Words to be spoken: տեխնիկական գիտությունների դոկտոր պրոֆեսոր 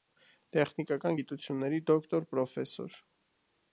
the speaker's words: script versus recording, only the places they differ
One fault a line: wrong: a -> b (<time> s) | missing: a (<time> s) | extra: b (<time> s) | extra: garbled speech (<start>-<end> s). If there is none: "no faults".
no faults